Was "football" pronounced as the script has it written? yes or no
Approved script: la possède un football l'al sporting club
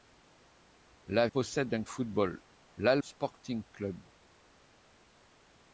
yes